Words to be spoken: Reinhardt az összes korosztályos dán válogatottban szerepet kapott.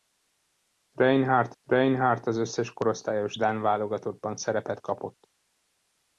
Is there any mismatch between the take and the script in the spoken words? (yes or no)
yes